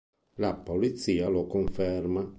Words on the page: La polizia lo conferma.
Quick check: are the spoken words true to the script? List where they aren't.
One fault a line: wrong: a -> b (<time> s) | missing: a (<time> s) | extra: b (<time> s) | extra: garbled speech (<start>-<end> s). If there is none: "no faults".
no faults